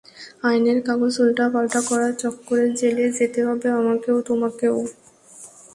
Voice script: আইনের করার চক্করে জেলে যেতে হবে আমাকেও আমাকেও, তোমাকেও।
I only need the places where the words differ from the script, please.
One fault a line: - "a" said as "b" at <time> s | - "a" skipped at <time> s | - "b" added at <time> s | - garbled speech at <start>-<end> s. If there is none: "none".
- "কাগজ উল্টাপাল্টা" added at 0.9 s
- "আমাকেও" skipped at 4.2 s